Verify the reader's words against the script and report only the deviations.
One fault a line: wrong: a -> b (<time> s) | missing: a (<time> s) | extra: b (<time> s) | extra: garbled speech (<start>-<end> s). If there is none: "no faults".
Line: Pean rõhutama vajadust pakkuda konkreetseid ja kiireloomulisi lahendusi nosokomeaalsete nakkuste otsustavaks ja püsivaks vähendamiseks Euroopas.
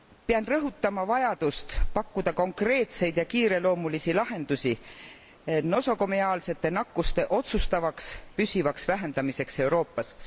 missing: ja (8.2 s)